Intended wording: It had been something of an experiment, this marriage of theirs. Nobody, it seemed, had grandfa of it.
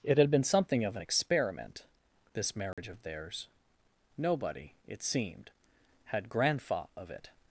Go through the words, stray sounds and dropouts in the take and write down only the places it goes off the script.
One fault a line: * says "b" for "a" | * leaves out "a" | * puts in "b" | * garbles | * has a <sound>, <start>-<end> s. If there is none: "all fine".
* has a dropout, 2.7-2.8 s